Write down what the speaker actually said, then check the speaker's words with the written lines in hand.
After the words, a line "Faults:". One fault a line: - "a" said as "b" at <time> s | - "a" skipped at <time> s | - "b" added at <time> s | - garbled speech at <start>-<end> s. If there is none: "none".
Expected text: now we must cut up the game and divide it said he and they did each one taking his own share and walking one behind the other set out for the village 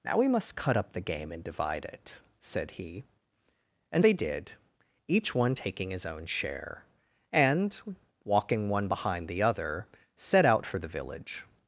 now we must cut up the game and divide it said he and they did each one taking his own share and walking one behind the other set out for the village
Faults:
none